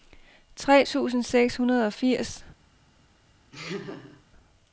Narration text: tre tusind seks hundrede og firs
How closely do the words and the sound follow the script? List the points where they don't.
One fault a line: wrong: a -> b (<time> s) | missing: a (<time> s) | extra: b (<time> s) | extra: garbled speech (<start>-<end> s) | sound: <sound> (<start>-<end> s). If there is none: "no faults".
sound: laugh (3.5-4.2 s)